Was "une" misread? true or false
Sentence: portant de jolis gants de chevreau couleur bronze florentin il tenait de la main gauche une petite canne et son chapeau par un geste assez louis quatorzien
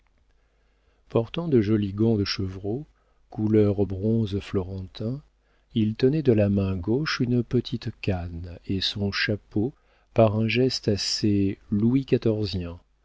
false